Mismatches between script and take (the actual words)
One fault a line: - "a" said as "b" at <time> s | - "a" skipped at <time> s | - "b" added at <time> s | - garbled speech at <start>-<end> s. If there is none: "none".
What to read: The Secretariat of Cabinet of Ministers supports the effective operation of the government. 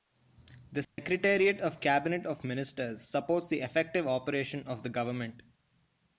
none